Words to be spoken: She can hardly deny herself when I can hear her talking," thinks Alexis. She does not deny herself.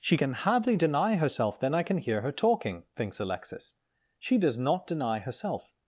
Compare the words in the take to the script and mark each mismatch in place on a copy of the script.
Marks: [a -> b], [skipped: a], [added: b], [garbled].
She can hardly deny herself [when -> then] I can hear her talking," thinks Alexis. She does not deny herself.